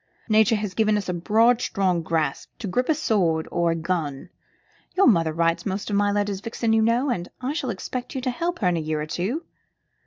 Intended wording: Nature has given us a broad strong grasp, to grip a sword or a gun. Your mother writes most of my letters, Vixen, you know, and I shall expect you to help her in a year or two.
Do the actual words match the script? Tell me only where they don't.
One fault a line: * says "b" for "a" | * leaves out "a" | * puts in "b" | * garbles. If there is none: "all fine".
all fine